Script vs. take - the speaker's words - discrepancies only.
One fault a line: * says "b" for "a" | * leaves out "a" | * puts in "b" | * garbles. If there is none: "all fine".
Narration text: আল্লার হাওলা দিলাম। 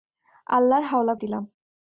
all fine